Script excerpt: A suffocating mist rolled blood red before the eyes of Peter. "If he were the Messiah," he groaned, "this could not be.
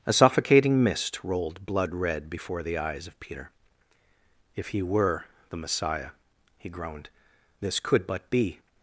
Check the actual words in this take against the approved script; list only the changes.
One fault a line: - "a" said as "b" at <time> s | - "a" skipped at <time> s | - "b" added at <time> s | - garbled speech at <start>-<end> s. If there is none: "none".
- "not" said as "but" at 8.1 s